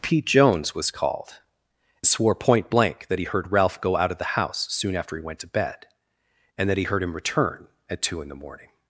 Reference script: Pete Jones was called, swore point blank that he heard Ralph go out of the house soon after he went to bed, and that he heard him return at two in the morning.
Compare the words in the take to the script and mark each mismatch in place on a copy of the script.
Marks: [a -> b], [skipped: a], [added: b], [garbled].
Pete Jones was called, swore point blank that he heard Ralph go out of the house soon after he went to bed, and that he heard him return at two in the morning.